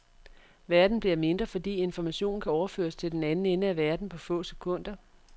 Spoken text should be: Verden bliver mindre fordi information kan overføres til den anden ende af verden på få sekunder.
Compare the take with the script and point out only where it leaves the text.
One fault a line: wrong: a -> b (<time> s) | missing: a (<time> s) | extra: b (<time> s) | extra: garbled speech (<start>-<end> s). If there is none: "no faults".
no faults